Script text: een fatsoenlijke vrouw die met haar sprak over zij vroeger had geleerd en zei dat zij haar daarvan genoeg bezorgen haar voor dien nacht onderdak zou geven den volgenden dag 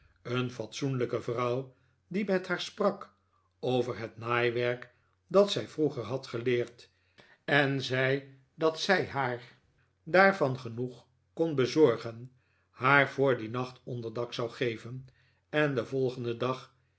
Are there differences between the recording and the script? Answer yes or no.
yes